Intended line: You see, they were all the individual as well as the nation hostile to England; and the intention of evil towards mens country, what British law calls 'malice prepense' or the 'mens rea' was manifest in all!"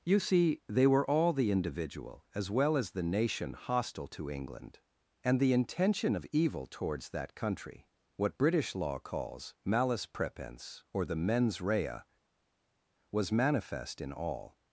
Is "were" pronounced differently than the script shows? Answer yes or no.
no